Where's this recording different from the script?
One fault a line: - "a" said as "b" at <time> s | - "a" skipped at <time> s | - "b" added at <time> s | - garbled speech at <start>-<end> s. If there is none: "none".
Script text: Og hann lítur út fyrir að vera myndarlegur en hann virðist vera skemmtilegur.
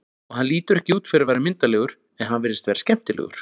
- "ekki" added at 0.8 s